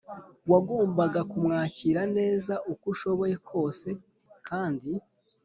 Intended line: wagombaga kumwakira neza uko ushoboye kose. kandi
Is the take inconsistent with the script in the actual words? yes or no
no